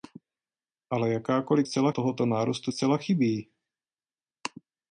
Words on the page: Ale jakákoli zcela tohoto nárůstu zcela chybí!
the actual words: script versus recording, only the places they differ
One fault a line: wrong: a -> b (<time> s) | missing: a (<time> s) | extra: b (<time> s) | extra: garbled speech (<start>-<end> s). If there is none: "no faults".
no faults